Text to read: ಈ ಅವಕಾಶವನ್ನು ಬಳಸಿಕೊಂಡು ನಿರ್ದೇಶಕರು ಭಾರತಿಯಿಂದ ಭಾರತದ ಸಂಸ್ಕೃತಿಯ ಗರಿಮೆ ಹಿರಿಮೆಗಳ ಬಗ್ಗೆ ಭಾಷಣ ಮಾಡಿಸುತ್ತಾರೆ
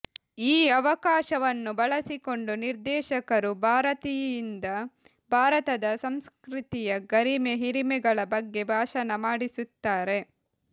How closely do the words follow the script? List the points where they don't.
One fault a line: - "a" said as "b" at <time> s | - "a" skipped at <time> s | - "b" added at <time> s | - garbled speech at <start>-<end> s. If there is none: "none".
none